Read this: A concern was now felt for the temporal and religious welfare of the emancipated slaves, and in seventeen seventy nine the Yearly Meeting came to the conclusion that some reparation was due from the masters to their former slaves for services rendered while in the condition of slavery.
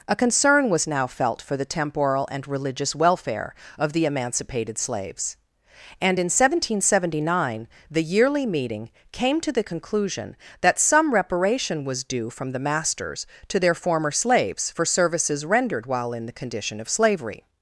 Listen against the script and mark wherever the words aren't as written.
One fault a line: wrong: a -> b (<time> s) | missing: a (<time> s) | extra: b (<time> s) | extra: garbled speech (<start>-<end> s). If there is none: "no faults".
no faults